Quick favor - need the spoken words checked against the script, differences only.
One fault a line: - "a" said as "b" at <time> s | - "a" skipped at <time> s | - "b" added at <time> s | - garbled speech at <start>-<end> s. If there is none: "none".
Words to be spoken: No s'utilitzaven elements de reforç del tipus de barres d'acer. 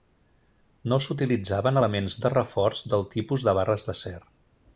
none